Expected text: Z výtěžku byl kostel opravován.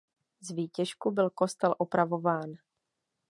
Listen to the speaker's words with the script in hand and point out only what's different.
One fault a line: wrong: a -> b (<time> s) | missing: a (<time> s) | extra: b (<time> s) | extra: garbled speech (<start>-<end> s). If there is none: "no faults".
no faults